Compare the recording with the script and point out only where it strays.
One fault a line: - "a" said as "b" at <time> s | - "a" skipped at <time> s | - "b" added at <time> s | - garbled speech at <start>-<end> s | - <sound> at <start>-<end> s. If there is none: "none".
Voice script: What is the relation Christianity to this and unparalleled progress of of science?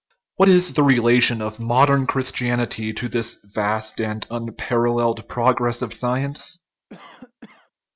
- "of modern" added at 1.4 s
- "vast" added at 3.4 s
- "of" skipped at 5.9 s
- cough at 6.9-7.7 s